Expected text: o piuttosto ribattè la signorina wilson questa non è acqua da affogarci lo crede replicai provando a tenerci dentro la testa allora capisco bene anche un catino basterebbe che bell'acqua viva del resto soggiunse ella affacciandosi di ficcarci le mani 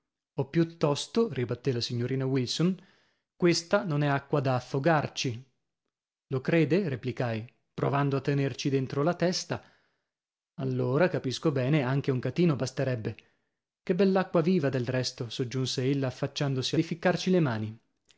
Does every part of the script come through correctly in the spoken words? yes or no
yes